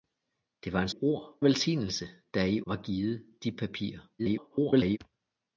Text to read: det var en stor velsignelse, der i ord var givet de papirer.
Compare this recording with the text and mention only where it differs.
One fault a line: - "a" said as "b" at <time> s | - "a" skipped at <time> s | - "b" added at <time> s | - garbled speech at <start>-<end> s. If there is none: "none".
- "stor" said as "ord" at 0.9 s
- "ord" skipped at 2.6 s
- garbled speech at 4.2-5.0 s